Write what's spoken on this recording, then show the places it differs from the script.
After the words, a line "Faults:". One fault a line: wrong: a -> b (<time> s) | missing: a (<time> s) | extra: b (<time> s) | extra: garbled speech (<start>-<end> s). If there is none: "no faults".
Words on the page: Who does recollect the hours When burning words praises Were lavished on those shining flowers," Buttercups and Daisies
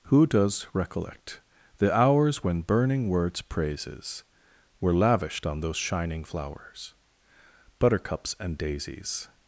Who does recollect the hours When burning words praises Were lavished on those shining flowers," Buttercups and Daisies
Faults:
no faults